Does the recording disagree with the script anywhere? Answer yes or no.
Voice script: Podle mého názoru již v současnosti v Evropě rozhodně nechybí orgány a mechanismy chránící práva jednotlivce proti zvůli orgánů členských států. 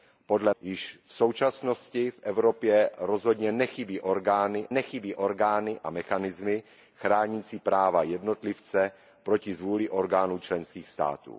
yes